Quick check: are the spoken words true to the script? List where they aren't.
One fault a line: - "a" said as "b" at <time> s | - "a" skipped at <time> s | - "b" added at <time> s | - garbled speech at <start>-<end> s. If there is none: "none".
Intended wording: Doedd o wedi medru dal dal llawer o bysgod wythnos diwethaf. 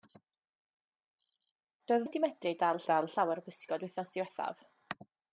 none